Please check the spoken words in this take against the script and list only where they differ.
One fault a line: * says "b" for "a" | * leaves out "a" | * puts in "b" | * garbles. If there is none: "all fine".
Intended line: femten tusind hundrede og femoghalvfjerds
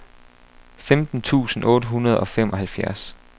* puts in "otte"